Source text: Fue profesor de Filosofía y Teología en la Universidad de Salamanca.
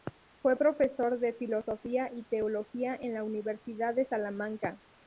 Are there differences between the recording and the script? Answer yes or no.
no